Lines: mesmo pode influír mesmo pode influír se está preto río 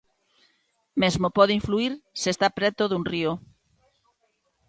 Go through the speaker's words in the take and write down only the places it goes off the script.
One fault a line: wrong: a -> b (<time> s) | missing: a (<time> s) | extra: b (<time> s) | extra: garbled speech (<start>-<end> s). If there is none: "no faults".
missing: mesmo pode influír (1.9 s)
extra: dun (2.9 s)